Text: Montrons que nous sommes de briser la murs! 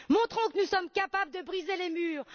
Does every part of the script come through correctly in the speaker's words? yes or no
no